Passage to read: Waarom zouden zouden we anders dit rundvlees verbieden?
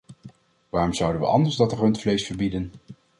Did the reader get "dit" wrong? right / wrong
wrong